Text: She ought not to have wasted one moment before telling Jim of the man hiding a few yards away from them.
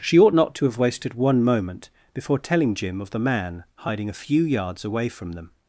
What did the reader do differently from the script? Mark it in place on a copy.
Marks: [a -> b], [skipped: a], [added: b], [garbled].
She ought not to have wasted one moment before telling Jim of the man hiding a few yards away from them.